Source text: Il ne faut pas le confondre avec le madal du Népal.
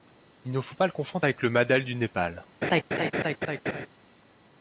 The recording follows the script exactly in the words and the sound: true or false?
false